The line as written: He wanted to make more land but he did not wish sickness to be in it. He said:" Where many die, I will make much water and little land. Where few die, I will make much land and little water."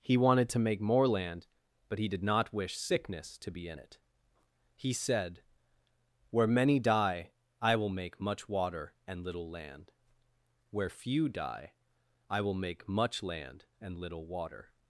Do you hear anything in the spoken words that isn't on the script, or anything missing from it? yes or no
no